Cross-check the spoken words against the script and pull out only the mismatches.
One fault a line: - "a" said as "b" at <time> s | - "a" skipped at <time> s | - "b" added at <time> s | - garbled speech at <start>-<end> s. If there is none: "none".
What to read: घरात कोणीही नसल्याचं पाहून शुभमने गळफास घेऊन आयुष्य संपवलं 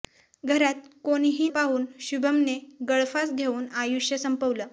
- "नसल्याचं" skipped at 1.5 s